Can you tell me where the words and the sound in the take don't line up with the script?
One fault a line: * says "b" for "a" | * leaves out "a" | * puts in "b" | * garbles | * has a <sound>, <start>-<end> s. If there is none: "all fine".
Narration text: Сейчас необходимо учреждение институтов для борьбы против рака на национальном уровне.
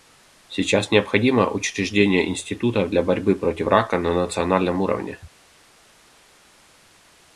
all fine